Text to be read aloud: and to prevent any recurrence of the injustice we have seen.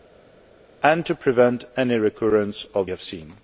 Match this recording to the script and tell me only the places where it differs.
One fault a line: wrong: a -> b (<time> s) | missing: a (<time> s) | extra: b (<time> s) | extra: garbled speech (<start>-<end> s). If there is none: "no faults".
missing: the injustice we (2.9 s)